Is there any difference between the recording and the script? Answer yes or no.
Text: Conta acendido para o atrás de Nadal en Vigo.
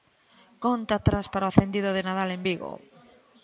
yes